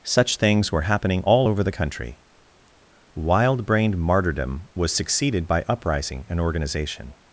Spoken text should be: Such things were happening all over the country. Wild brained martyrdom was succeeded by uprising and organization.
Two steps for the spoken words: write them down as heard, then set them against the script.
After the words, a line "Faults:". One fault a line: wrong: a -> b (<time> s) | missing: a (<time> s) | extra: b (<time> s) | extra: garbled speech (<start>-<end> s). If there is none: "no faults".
Such things were happening all over the country. Wild brained martyrdom was succeeded by uprising and organization.
Faults:
no faults